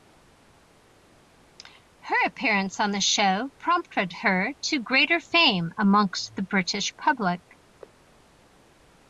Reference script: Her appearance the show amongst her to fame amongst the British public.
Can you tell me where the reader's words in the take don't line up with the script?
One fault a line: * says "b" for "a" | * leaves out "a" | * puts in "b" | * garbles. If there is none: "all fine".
* puts in "on"
* says "prompted" for "amongst"
* puts in "greater"